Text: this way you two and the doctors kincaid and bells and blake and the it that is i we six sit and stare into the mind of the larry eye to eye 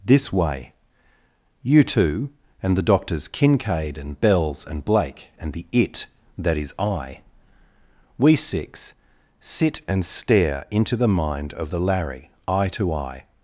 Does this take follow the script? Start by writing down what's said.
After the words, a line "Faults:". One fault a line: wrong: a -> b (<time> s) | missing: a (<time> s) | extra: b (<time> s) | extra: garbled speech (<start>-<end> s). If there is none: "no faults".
this way you two and the doctors kincaid and bells and blake and the it that is i we six sit and stare into the mind of the larry eye to eye
Faults:
no faults